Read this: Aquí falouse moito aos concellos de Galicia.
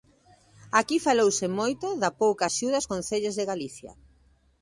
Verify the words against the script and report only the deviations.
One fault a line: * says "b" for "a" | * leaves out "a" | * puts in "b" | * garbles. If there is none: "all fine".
* puts in "da pouca axuda"